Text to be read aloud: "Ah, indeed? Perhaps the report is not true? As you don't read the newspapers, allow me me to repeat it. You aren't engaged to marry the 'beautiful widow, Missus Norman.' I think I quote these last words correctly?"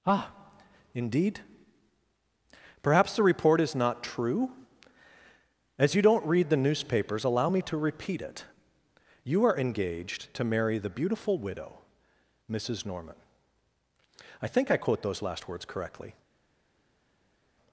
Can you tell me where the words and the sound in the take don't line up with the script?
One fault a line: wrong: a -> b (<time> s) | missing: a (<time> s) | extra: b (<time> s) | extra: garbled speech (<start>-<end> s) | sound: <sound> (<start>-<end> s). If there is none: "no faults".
missing: me (7.6 s)
wrong: aren't -> are (9.4 s)
wrong: these -> those (15.0 s)